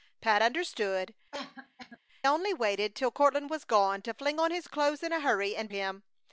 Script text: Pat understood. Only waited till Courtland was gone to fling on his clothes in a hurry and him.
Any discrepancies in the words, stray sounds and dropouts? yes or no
yes